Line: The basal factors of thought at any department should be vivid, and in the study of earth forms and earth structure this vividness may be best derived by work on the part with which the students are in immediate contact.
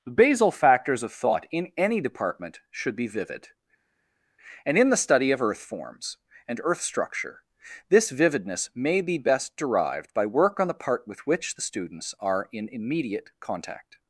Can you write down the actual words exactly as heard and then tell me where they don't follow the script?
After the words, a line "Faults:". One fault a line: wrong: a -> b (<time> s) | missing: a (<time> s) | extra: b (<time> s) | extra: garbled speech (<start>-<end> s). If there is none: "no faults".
The basal factors of thought in any department should be vivid, and in the study of earth forms and earth structure this vividness may be best derived by work on the part with which the students are in immediate contact.
Faults:
wrong: at -> in (1.5 s)